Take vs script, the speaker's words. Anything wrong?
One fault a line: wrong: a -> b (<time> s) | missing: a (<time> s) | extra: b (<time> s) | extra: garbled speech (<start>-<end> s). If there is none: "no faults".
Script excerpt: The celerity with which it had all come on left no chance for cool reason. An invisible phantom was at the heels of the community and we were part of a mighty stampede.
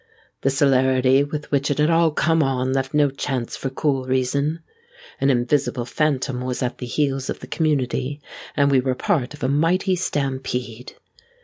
no faults